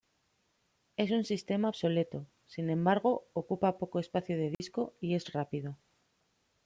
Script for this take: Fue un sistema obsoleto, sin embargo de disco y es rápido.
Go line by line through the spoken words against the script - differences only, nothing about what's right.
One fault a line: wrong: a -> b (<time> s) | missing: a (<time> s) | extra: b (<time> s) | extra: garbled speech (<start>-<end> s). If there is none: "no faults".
wrong: Fue -> Es (1.0 s)
extra: ocupa poco espacio (3.3 s)